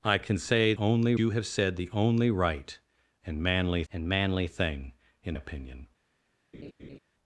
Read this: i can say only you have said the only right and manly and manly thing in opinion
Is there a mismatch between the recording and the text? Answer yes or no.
no